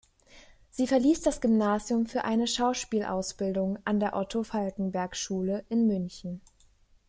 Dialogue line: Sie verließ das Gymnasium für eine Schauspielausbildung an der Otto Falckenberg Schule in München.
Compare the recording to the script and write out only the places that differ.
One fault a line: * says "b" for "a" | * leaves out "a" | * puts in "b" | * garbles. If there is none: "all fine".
all fine